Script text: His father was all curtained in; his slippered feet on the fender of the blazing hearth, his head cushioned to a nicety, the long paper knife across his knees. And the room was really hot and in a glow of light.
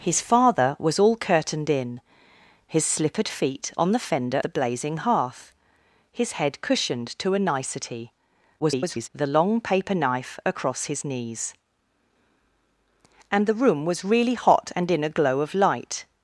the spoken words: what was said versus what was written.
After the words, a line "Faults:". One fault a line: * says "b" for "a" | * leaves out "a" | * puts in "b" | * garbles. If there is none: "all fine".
His father was all curtained in; his slippered feet on the fender the blazing hearth, his head cushioned to a nicety, [garbled] the long paper knife across his knees. And the room was really hot and in a glow of light.
Faults:
* leaves out "of"
* garbles